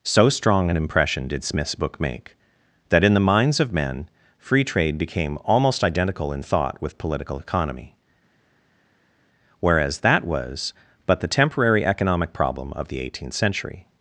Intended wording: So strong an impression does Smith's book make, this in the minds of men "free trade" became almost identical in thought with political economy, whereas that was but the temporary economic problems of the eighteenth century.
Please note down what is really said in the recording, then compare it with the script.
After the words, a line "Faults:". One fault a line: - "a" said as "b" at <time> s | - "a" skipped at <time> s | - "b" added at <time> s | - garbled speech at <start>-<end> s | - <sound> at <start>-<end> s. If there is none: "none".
So strong an impression did Smith's book make, that in the minds of men "free trade" became almost identical in thought with political economy, whereas that was but the temporary economic problem of the eighteenth century.
Faults:
- "does" said as "did" at 1.3 s
- "this" said as "that" at 2.9 s
- "problems" said as "problem" at 12.3 s